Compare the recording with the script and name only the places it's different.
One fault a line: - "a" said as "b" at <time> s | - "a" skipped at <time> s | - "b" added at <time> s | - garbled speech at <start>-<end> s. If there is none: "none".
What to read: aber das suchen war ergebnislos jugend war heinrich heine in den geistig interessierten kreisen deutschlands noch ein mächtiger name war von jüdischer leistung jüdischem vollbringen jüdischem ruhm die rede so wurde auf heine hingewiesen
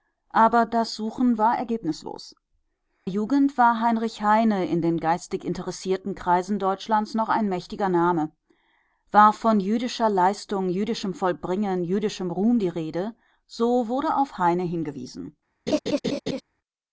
none